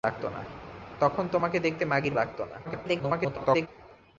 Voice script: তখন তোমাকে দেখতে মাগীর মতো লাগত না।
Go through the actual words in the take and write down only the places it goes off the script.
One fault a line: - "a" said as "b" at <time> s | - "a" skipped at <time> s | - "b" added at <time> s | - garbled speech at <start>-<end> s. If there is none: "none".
- "মতো" skipped at 2.1 s
- garbled speech at 2.6-3.7 s